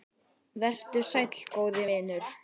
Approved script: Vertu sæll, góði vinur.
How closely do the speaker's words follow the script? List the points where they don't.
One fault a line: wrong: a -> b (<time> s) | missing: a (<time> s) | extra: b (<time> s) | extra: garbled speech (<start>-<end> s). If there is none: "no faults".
no faults